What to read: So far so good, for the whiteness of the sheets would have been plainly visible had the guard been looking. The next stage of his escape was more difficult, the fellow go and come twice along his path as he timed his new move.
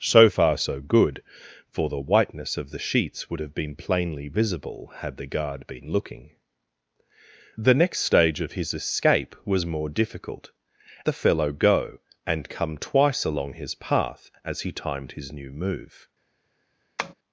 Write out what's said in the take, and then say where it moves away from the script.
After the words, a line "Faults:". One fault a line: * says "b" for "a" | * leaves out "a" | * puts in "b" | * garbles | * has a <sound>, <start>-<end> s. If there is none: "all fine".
So far so good, for the whiteness of the sheets would have been plainly visible had the guard been looking. The next stage of his escape was more difficult, the fellow go and come twice along his path as he timed his new move.
Faults:
* has a tap, 17.0-17.1 s